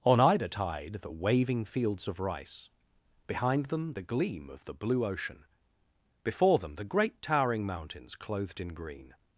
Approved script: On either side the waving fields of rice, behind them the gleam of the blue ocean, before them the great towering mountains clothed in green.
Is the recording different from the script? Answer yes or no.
yes